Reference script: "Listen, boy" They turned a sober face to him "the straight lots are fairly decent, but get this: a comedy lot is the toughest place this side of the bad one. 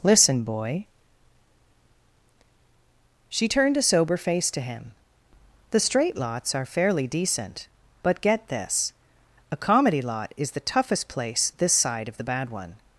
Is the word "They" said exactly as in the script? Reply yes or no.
no